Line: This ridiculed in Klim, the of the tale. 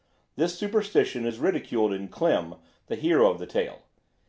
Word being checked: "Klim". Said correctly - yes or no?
yes